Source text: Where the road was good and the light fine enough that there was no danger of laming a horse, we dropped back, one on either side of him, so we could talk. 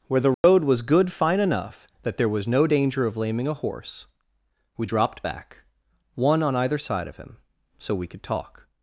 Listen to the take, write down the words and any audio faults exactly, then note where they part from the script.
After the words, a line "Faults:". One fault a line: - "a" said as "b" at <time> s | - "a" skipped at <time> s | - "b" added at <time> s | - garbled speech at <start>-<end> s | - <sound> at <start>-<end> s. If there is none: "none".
Where the road was good fine enough that there was no danger of laming a horse, we dropped back, one on either side of him, so we could talk.
Faults:
- dropout at 0.3-0.4 s
- "and the light" skipped at 1.1 s